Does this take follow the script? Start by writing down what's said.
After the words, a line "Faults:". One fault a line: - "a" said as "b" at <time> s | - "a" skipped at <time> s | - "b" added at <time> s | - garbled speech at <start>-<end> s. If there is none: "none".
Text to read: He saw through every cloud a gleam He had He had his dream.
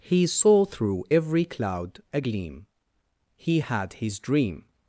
He saw through every cloud a gleam He had his dream.
Faults:
- "He had" skipped at 3.9 s